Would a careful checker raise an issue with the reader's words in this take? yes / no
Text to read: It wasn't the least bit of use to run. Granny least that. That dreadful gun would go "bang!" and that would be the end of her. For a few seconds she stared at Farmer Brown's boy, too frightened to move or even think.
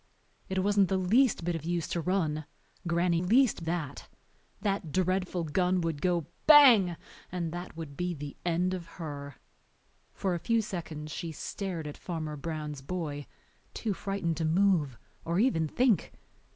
no